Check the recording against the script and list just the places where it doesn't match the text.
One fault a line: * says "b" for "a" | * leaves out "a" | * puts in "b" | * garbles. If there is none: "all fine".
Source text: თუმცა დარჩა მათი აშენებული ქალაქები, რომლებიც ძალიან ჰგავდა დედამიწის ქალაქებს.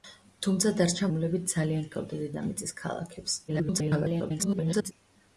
* leaves out "მათი აშენებული ქალაქები"
* garbles